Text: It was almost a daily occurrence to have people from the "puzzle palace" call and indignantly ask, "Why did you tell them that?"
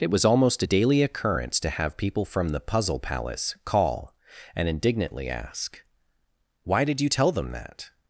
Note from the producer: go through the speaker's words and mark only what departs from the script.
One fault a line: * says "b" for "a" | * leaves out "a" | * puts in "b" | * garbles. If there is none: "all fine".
all fine